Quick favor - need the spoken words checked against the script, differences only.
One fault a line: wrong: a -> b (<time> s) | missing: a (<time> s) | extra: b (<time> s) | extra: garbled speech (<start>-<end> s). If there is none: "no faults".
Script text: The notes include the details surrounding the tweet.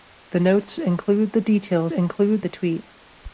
wrong: surrounding -> include (1.9 s)